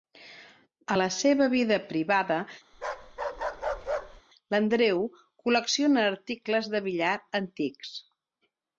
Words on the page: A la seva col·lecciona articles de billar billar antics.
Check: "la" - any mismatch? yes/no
no